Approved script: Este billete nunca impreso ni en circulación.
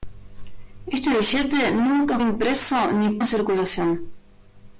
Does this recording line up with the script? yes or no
yes